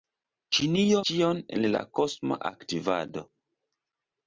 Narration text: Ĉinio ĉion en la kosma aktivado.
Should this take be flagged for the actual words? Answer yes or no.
no